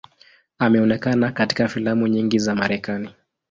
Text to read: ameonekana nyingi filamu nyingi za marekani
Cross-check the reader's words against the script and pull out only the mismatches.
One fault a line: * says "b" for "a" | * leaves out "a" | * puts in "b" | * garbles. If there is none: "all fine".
* says "katika" for "nyingi"